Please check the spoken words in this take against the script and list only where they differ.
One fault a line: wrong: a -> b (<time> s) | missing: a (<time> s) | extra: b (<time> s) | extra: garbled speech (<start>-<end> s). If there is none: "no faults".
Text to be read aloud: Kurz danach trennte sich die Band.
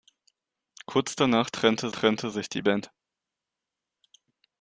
extra: trennte (1.9 s)